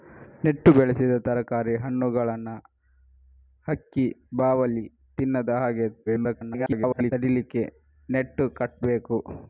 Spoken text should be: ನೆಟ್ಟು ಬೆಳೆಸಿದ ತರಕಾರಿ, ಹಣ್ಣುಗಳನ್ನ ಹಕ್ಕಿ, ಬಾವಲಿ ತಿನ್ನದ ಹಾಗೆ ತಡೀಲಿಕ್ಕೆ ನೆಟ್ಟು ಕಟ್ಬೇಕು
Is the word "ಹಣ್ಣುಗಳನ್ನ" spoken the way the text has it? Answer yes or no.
yes